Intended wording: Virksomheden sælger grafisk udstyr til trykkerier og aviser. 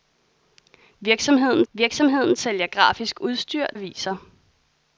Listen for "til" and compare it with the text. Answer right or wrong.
wrong